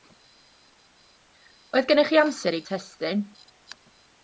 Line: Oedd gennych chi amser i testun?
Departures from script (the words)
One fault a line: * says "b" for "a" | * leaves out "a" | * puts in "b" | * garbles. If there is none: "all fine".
all fine